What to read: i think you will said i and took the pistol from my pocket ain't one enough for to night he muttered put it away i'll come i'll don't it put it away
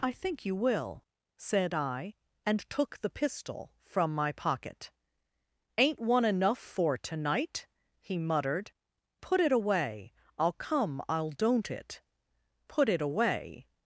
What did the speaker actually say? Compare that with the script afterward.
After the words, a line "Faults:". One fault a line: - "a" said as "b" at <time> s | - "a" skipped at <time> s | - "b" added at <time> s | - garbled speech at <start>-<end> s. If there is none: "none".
i think you will said i and took the pistol from my pocket ain't one enough for to night he muttered put it away i'll come i'll don't it put it away
Faults:
none